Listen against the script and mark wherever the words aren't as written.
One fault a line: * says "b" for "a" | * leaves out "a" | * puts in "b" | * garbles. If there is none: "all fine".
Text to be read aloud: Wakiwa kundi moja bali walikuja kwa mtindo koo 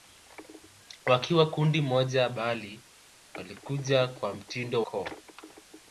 all fine